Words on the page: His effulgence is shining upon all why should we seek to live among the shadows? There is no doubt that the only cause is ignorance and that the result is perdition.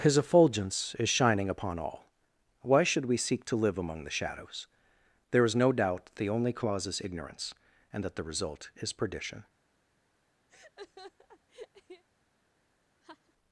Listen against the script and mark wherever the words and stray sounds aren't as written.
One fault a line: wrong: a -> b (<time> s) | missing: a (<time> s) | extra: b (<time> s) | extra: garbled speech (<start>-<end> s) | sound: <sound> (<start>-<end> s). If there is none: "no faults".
missing: that (6.1 s)
sound: laugh (10.5-12.0 s)
sound: laugh (13.0-13.3 s)